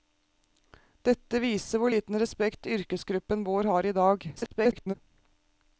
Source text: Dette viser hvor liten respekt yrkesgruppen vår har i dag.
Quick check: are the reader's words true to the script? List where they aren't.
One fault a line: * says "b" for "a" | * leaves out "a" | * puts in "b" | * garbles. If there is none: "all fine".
* garbles